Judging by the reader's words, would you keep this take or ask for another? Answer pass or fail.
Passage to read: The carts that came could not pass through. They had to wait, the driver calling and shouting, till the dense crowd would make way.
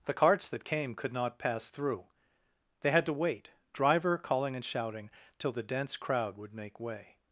fail